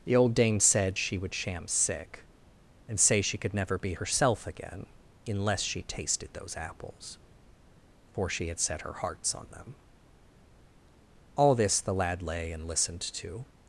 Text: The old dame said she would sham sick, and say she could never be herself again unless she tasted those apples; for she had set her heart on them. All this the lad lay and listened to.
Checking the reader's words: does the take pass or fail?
fail